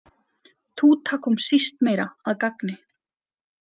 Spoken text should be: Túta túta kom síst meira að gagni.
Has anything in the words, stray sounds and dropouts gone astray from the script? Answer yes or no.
yes